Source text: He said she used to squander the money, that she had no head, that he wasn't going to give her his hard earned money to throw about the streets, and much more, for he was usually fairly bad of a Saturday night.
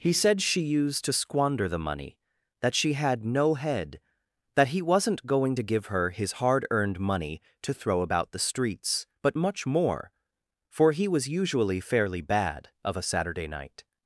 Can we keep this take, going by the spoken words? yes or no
no